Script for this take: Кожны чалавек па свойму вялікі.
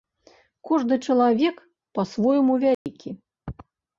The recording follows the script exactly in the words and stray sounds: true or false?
false